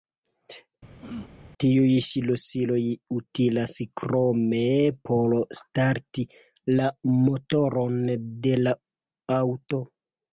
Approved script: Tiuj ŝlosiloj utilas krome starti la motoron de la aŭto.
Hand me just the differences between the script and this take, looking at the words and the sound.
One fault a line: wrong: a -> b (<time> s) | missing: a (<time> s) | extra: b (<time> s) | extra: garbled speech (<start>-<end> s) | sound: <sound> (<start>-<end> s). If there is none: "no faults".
sound: throat clearing (1.0-1.4 s)
extra: por (5.1 s)